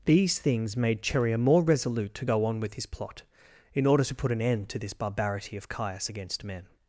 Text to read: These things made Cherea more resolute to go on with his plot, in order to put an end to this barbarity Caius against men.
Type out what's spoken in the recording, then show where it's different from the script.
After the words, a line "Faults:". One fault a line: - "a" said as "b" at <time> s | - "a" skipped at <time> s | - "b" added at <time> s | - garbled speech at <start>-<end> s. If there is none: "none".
These things made Cherea more resolute to go on with his plot, in order to put an end to this barbarity of Caius against men.
Faults:
- "of" added at 5.6 s